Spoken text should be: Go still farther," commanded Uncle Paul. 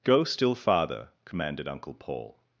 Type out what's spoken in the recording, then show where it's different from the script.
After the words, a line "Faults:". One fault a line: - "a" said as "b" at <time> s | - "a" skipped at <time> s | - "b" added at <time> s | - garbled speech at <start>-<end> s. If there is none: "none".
Go still farther," commanded Uncle Paul.
Faults:
none